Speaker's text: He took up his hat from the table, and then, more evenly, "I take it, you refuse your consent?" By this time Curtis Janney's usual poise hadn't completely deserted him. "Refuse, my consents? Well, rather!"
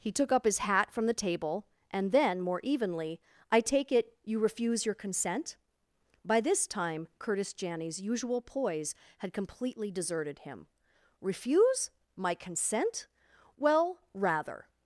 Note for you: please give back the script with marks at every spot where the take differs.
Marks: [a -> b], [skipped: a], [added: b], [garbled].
He took up his hat from the table, and then, more evenly, "I take it, you refuse your consent?" By this time Curtis Janney's usual poise [hadn't -> had] completely deserted him. "Refuse, my [consents? -> consent] Well, rather!"